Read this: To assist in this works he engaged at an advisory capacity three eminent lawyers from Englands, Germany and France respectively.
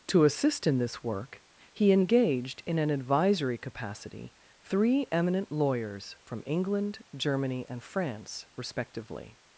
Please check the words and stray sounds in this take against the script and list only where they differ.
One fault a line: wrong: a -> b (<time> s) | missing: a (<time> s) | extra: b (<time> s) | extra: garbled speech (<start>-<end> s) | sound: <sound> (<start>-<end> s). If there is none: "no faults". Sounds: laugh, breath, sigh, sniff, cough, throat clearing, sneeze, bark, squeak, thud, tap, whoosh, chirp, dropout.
wrong: works -> work (1.0 s)
wrong: at -> in (2.6 s)
wrong: Englands -> England (6.5 s)